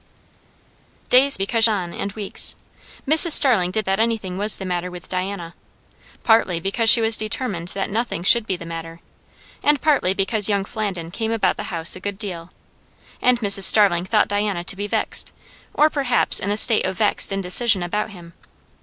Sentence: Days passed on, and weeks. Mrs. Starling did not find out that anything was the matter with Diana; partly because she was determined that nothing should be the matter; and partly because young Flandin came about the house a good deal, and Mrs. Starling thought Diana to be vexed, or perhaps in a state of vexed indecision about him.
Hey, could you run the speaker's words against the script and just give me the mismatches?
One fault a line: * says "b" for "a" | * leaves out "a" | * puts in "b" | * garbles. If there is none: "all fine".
* says "because" for "passed"
* leaves out "not find out"